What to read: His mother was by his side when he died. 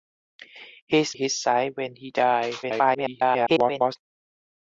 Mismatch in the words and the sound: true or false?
true